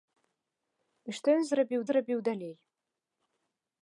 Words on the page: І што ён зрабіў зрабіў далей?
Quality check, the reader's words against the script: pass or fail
pass